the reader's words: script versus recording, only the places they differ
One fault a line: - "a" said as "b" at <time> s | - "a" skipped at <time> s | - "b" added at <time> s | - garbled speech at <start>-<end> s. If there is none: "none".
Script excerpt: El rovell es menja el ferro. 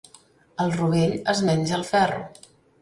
none